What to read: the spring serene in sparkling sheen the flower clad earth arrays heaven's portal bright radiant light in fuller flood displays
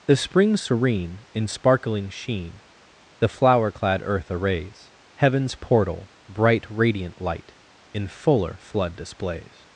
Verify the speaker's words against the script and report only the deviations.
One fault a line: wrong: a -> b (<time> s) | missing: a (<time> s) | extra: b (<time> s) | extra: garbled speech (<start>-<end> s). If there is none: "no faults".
no faults